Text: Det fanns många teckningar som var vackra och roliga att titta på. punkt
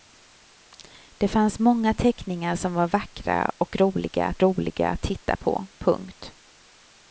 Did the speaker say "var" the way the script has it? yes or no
yes